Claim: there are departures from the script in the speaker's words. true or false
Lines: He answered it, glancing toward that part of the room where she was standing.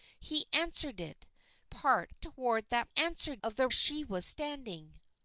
true